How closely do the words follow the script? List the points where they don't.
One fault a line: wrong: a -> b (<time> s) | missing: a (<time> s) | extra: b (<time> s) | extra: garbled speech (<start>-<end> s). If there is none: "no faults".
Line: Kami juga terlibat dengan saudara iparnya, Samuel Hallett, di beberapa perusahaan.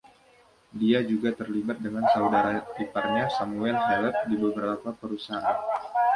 wrong: Kami -> Dia (0.7 s)